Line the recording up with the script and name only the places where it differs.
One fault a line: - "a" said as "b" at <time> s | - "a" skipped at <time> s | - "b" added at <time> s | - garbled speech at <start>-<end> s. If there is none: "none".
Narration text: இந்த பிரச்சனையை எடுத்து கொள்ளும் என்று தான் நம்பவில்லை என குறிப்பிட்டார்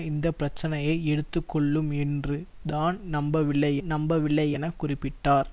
- "நம்பவில்லை" added at 3.9 s